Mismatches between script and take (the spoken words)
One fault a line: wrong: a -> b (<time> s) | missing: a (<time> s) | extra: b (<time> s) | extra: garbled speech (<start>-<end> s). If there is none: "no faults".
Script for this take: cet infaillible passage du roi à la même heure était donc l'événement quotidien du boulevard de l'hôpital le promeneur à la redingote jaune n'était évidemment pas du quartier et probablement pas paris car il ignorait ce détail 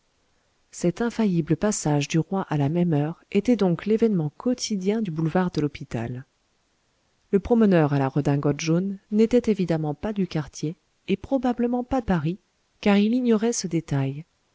no faults